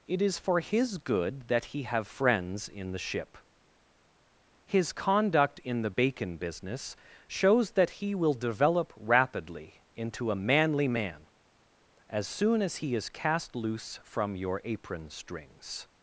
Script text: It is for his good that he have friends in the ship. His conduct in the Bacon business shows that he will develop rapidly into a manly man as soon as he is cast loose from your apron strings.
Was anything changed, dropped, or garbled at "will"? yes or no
no